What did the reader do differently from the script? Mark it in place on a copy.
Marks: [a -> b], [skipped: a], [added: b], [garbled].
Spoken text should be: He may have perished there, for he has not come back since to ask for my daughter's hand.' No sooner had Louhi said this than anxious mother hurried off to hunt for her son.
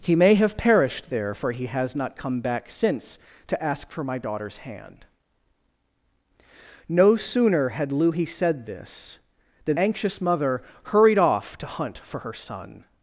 He may have perished there, for he has not come back since to ask for my daughter's hand.' No sooner had Louhi said this than anxious mother hurried off to hunt for her son.